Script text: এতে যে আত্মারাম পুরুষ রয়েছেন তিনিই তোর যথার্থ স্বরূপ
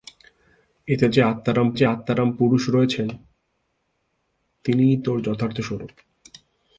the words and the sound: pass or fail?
fail